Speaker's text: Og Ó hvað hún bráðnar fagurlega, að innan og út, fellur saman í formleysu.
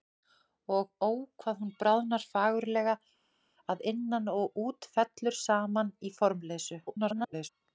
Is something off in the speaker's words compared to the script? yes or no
yes